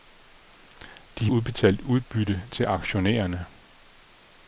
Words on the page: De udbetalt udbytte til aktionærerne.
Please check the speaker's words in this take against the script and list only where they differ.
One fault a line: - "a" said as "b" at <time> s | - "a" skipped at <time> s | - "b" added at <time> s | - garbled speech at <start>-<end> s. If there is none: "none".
none